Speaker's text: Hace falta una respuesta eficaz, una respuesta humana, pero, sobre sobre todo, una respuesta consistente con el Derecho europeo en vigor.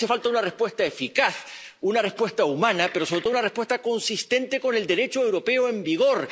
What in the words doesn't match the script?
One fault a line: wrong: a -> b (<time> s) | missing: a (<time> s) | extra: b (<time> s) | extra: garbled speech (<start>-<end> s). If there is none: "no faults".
missing: sobre (3.2 s)